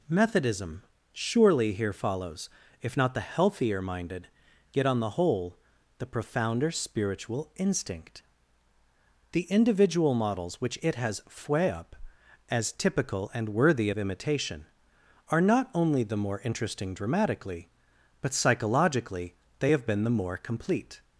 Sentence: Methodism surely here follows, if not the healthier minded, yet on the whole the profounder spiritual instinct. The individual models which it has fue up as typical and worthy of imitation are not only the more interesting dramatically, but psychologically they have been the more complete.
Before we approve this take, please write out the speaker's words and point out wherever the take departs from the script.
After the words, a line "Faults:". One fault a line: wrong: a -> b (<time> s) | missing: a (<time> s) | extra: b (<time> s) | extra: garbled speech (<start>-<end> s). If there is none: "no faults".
Methodism surely here follows, if not the healthier minded, yet on the whole the profounder spiritual instinct. The individual models which it has fue up as typical and worthy of imitation are not only the more interesting dramatically, but psychologically they have been the more complete.
Faults:
no faults